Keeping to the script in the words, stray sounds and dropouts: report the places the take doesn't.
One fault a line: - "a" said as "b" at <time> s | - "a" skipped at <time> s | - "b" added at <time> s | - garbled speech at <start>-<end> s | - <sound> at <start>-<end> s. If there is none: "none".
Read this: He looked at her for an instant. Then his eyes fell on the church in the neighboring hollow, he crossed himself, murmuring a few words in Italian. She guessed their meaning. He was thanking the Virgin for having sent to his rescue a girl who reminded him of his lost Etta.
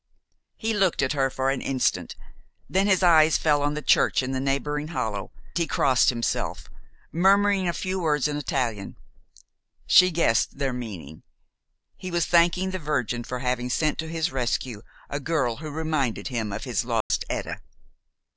- dropout at 17.0-17.1 s